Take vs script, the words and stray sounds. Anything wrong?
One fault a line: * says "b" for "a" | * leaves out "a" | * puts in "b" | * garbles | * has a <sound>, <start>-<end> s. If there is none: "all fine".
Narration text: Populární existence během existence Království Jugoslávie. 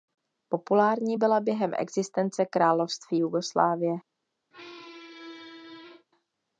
* says "byla" for "existence"
* has a squeak, 4.5-6.1 s